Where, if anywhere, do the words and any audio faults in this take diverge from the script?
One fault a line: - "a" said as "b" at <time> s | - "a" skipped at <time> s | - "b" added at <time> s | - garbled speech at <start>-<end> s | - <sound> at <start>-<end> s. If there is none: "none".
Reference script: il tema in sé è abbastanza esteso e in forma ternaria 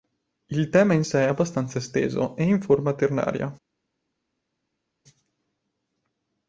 none